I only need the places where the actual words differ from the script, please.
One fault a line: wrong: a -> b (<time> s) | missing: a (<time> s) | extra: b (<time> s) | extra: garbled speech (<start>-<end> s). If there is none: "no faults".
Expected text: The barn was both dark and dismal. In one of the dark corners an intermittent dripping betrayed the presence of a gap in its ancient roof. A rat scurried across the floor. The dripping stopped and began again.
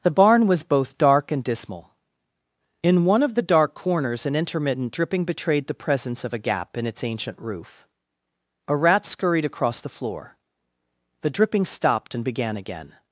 no faults